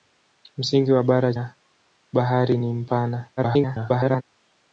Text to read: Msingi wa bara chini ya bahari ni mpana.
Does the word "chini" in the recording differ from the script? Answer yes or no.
yes